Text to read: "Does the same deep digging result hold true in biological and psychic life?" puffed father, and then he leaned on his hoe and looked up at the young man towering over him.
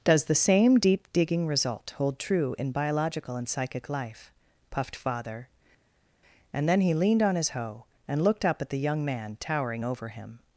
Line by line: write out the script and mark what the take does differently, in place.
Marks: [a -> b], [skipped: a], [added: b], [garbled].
"Does the same deep digging result hold true in biological and psychic life?" puffed father, and then he leaned on his hoe and looked up at the young man towering over him.